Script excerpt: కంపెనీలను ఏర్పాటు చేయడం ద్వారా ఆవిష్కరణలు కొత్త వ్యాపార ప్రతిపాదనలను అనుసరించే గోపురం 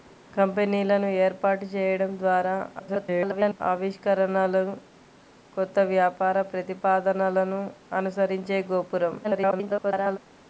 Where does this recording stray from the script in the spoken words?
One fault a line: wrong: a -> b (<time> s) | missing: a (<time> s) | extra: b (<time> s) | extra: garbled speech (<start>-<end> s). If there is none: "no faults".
extra: garbled speech (2.8-3.6 s)
extra: garbled speech (9.2-10.2 s)